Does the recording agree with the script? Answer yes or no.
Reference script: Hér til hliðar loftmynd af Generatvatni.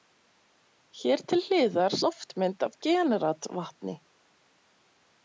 yes